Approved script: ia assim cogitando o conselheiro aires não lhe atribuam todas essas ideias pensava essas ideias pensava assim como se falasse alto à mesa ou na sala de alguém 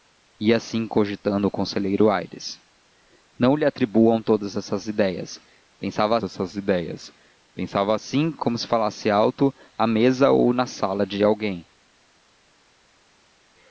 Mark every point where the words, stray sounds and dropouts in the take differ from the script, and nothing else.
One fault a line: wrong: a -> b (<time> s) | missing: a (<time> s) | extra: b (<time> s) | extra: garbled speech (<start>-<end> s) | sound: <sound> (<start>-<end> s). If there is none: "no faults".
no faults